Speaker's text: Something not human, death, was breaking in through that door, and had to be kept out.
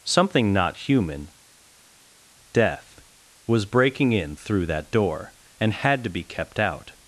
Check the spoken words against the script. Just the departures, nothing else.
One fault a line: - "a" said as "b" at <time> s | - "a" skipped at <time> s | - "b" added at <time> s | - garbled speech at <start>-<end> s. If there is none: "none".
none